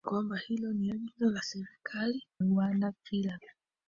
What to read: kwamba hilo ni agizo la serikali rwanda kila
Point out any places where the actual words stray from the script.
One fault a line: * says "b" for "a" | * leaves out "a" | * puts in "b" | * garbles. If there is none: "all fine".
all fine